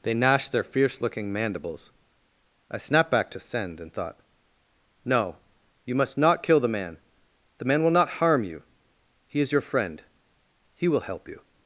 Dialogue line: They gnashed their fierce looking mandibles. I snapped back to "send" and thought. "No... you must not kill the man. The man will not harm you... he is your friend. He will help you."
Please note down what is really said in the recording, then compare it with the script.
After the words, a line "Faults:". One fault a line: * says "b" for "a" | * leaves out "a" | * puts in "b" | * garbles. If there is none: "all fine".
They gnashed their fierce looking mandibles. I snapped back to "send" and thought. "No... you must not kill the man. The man will not harm you... he is your friend. He will help you."
Faults:
all fine